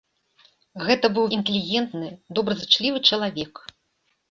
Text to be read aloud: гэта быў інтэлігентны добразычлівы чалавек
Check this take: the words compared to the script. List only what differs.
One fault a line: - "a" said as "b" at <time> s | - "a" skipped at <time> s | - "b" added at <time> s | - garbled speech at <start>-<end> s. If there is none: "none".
none